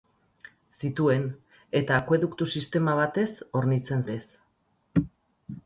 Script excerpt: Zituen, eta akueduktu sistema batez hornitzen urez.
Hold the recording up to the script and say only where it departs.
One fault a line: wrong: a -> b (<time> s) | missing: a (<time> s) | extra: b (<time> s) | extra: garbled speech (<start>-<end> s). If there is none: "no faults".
no faults